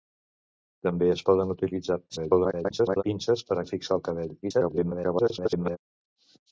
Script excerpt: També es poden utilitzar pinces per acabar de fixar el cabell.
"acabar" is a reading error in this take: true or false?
true